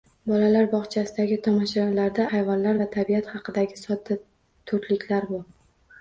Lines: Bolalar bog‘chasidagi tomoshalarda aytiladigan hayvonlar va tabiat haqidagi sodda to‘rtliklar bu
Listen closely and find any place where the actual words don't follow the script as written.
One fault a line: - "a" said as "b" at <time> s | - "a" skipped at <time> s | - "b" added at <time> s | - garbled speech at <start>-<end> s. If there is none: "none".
- "aytiladigan" skipped at 2.2 s